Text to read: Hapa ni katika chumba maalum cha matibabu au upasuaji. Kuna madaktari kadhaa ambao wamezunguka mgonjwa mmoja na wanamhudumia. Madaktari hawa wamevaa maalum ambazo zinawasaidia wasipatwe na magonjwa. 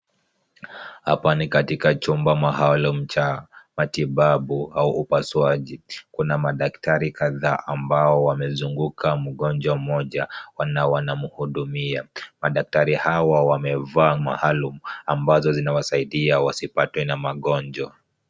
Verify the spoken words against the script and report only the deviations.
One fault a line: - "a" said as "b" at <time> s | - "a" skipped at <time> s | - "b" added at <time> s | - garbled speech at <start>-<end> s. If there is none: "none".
none